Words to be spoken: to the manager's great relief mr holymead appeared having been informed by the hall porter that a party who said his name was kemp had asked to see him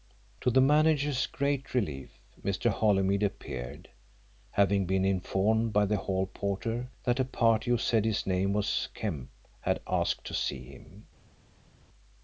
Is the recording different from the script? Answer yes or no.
no